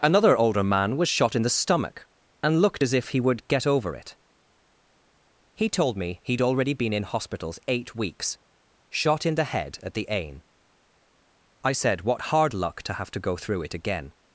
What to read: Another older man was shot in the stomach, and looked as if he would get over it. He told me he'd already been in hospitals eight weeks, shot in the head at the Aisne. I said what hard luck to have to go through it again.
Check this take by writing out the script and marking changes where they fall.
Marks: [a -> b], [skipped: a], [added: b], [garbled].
Another older man was shot in the stomach, and looked as if he would get over it. He told me he'd already been in hospitals eight weeks, shot in the head at the Aisne. I said what hard luck to have to go through it again.